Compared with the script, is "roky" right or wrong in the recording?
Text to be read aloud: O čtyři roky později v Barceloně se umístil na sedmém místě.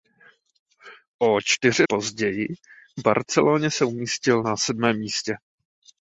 wrong